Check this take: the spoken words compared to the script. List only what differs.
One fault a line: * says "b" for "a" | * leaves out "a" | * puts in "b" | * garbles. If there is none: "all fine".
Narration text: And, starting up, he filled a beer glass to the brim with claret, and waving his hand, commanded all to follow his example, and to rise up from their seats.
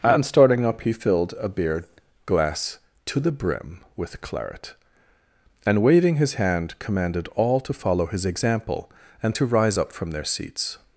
all fine